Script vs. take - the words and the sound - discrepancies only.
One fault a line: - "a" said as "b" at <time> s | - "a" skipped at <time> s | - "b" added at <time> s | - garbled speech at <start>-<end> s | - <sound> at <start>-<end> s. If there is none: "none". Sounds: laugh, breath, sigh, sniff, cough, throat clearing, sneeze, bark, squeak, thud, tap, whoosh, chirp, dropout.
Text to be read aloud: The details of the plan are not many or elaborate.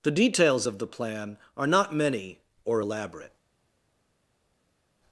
none